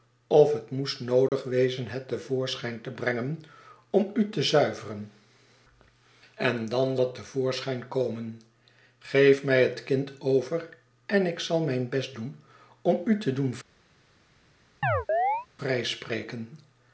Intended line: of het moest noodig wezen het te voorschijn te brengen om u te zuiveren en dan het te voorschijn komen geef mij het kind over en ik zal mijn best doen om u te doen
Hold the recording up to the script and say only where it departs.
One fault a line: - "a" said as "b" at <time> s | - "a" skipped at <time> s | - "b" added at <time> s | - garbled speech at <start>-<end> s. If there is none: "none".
none